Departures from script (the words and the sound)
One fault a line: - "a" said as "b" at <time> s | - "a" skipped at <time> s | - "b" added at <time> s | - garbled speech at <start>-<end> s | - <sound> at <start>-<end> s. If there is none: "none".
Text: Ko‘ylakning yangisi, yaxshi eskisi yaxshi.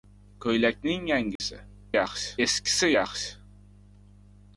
- dropout at 1.4-1.4 s